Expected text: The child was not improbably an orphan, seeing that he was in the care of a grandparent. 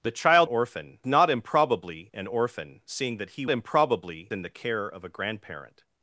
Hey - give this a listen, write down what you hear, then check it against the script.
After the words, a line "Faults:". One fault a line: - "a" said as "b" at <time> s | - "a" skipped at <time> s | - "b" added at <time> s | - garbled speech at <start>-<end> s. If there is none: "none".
The child orphan not improbably an orphan, seeing that he improbably in the care of a grandparent.
Faults:
- "was" said as "orphan" at 0.4 s
- "was" said as "improbably" at 3.5 s